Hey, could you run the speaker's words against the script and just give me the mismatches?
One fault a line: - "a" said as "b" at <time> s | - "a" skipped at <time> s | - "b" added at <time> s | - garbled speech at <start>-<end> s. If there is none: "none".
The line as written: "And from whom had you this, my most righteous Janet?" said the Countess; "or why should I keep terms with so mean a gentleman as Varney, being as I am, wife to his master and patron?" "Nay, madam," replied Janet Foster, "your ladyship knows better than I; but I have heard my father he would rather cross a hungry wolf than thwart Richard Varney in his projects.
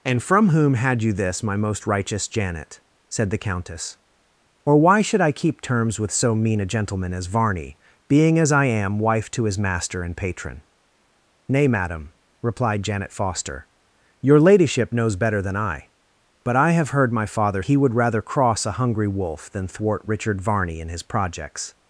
none